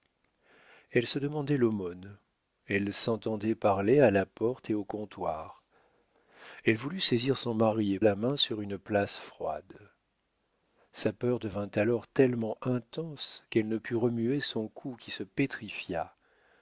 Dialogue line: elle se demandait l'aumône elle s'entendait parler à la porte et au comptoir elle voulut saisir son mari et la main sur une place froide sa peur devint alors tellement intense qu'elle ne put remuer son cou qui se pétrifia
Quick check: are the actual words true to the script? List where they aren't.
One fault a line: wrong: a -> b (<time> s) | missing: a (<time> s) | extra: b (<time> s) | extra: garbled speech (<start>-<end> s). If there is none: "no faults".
no faults